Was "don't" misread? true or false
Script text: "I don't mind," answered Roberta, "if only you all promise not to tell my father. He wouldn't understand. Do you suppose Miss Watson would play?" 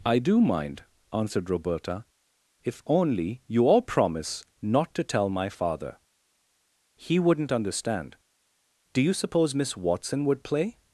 true